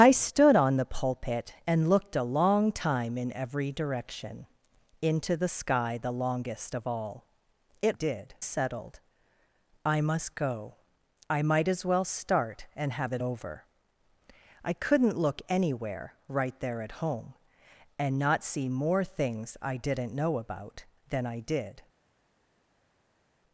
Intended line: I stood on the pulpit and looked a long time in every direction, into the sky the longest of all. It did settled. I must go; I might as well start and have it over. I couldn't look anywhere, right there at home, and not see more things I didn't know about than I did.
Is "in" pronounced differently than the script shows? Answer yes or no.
no